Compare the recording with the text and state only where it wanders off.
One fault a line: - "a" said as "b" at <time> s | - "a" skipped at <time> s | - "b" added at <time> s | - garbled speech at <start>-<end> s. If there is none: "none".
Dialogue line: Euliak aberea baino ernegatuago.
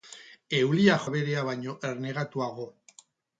none